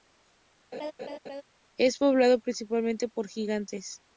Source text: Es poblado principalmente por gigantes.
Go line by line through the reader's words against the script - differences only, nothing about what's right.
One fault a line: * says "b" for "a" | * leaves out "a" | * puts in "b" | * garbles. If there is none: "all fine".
all fine